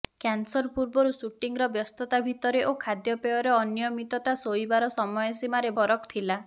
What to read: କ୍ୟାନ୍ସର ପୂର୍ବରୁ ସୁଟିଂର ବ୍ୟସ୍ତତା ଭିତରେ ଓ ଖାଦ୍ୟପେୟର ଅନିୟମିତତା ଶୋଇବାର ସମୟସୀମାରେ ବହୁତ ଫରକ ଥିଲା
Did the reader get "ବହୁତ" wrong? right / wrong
wrong